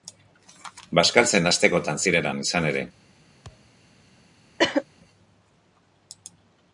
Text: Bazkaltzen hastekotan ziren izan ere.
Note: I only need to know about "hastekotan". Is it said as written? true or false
true